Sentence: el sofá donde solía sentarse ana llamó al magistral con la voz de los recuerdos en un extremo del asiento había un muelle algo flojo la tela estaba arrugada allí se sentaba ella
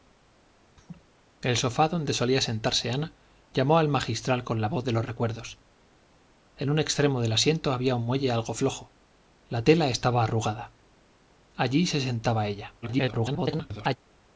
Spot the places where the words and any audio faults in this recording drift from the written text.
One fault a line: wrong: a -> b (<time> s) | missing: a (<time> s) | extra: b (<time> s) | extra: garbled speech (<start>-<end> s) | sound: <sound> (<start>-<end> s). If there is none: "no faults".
sound: laugh (0.8-1.1 s)
extra: garbled speech (12.8-14.0 s)